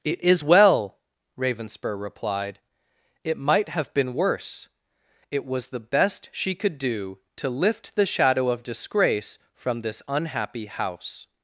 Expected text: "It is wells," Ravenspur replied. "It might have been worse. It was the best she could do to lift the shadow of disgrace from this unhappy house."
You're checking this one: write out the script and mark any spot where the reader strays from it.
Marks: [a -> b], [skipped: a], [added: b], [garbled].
"It is [wells," -> well] Ravenspur replied. "It might have been worse. It was the best she could do to lift the shadow of disgrace from this unhappy house."